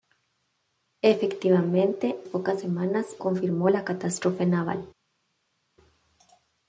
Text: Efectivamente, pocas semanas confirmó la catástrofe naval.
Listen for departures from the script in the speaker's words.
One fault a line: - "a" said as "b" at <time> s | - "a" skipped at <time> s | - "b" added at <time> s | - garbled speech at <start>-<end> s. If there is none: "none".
none